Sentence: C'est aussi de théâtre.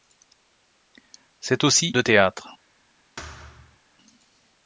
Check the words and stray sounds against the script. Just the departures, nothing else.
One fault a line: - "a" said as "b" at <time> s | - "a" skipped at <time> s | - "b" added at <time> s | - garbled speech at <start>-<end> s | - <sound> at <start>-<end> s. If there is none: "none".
- thud at 3.2-3.8 s